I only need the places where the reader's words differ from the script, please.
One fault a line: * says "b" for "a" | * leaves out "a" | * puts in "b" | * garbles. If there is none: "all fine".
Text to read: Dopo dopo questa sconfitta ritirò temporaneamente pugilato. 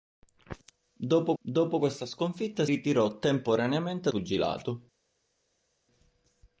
all fine